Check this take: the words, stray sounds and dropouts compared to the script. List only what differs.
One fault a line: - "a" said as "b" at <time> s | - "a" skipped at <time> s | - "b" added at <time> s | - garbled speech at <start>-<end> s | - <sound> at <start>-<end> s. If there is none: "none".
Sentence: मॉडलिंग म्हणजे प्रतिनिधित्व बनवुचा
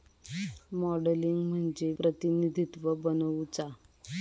none